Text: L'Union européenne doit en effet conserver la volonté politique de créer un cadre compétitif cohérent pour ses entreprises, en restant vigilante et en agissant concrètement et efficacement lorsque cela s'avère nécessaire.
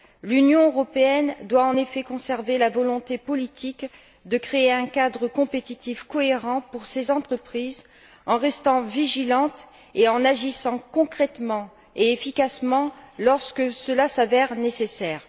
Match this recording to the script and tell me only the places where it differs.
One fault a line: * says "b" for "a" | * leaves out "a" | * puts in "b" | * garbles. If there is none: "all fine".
all fine